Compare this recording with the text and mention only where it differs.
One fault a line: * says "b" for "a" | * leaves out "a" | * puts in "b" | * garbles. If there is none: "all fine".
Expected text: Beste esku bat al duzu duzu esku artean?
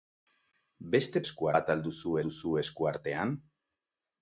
all fine